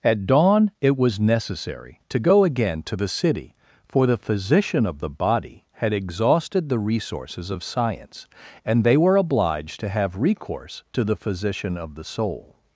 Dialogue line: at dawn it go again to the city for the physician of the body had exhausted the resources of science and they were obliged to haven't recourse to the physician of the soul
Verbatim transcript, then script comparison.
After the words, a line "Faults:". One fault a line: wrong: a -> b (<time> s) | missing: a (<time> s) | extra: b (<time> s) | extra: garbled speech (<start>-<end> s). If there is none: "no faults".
at dawn it was necessary to go again to the city for the physician of the body had exhausted the resources of science and they were obliged to have recourse to the physician of the soul
Faults:
extra: was necessary to (1.0 s)
wrong: haven't -> have (9.9 s)